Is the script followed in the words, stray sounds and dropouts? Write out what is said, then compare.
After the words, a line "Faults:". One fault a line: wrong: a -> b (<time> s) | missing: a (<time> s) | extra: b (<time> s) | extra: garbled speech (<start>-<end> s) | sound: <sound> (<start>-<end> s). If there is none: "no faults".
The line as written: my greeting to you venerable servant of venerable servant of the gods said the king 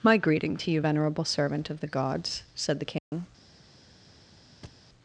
my greeting to you venerable servant of the gods said the king
Faults:
missing: venerable servant of (1.8 s)
sound: dropout (3.0-3.1 s)
sound: thud (4.6-4.9 s)